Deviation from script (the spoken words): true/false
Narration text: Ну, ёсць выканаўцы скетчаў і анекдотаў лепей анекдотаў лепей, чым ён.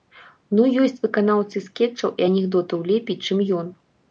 true